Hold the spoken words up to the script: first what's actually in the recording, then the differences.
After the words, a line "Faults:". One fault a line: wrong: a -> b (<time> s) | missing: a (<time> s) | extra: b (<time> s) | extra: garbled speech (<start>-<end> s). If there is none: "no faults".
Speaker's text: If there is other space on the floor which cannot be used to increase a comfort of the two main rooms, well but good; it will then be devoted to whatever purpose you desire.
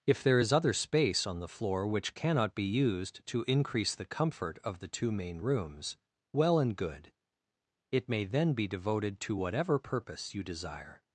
If there is other space on the floor which cannot be used to increase the comfort of the two main rooms, well and good; it may then be devoted to whatever purpose you desire.
Faults:
wrong: a -> the (3.9 s)
wrong: but -> and (6.6 s)
wrong: will -> may (8.1 s)